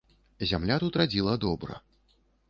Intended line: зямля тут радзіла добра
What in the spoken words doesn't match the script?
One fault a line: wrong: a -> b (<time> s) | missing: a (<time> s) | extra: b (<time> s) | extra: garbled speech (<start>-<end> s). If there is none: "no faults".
no faults